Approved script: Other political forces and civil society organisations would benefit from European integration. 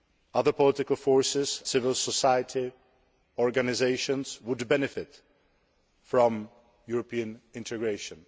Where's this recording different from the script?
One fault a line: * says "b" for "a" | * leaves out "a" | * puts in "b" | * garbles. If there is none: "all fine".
* leaves out "and"